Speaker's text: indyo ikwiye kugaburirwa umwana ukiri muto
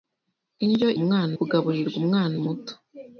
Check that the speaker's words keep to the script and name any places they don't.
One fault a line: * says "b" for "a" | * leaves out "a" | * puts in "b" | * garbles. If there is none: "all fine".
* says "umwana" for "ikwiye"
* leaves out "ukiri"